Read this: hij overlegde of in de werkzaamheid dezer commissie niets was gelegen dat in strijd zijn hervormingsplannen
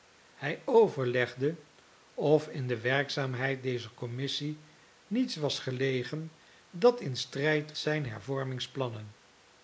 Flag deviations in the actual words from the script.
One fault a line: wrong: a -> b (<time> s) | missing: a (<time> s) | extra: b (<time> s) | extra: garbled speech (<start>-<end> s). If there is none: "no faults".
no faults